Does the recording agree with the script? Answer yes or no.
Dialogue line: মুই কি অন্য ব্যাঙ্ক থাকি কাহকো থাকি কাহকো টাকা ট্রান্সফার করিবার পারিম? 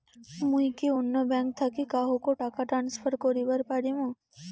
no